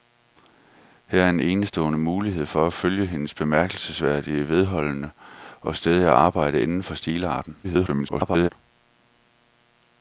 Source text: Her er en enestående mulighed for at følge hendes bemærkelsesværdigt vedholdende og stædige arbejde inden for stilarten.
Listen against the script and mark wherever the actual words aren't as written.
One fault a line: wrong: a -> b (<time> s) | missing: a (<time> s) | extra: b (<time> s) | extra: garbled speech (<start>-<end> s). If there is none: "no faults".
extra: garbled speech (7.6-8.5 s)